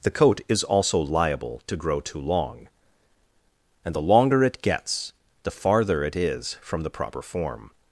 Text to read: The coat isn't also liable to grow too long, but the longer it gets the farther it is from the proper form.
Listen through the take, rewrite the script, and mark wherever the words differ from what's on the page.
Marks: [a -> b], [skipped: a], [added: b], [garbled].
The coat [isn't -> is] also liable to grow too long, [but -> and] the longer it gets the farther it is from the proper form.